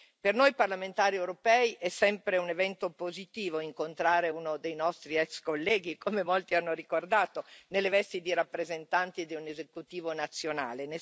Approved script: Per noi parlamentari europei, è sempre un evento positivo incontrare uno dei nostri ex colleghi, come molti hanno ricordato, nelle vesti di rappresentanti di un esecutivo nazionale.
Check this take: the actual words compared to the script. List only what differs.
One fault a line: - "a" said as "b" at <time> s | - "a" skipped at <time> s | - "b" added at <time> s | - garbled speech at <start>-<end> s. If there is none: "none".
none